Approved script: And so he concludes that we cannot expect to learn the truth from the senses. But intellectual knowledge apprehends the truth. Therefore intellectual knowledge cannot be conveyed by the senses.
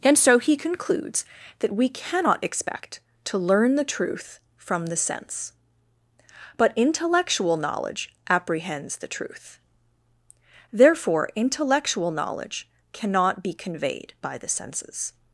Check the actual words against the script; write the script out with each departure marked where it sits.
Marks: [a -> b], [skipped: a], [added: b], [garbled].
And so he concludes that we cannot expect to learn the truth from the [senses. -> sense] But intellectual knowledge apprehends the truth. Therefore intellectual knowledge cannot be conveyed by the senses.